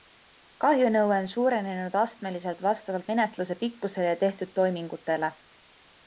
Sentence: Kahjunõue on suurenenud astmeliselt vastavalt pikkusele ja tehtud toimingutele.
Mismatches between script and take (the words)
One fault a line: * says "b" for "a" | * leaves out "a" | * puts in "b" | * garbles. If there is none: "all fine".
* puts in "menetluse"